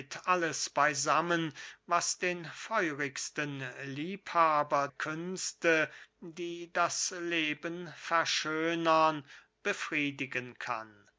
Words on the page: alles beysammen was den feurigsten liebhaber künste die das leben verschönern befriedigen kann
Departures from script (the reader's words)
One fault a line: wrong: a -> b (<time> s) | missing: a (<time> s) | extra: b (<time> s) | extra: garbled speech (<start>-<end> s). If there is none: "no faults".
no faults